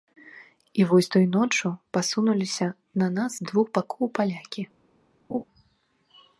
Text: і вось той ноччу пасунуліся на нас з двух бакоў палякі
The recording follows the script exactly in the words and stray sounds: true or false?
false